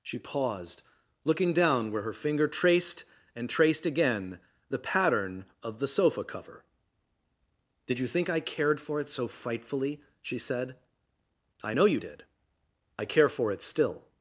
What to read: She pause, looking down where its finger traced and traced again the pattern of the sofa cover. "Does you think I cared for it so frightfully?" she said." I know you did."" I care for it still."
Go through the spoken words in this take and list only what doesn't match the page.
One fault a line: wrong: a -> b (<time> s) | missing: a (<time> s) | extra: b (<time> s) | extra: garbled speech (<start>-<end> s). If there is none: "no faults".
wrong: pause -> paused (0.2 s)
wrong: its -> her (2.0 s)
wrong: Does -> Did (7.8 s)